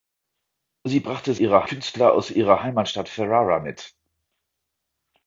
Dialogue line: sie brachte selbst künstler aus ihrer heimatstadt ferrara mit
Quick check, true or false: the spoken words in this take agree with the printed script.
false